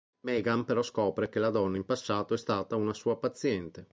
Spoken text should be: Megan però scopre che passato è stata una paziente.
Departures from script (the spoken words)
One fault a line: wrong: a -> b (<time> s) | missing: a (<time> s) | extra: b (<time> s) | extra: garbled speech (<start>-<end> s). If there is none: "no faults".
extra: la donna in (1.4 s)
extra: sua (2.9 s)